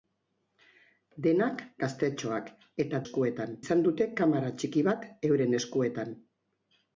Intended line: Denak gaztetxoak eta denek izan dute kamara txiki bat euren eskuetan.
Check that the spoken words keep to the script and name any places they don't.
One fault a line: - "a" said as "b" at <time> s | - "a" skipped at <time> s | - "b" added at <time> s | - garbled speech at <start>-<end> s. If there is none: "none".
- "denek" said as "eskuetan" at 3.0 s